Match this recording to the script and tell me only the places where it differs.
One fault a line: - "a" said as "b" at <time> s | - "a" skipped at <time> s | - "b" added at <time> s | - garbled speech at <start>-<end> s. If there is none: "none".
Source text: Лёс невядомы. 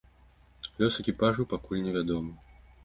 - "экіпажу пакуль" added at 1.0 s